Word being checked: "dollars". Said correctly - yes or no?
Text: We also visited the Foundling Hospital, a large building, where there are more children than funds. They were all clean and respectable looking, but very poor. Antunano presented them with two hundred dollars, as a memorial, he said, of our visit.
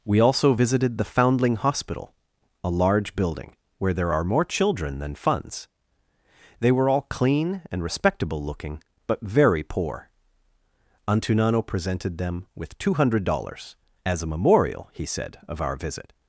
yes